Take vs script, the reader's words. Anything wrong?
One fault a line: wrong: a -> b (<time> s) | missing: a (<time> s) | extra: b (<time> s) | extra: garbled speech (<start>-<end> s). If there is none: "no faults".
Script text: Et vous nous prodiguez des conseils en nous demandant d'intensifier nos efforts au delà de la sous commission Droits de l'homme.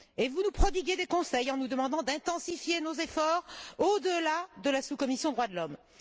no faults